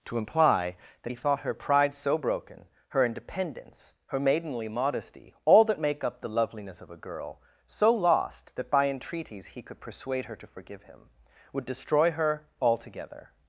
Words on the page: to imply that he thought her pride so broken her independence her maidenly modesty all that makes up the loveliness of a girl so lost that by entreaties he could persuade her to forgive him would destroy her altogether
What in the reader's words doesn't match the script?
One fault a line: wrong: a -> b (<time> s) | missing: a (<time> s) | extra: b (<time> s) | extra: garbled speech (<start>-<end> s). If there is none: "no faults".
wrong: makes -> make (5.8 s)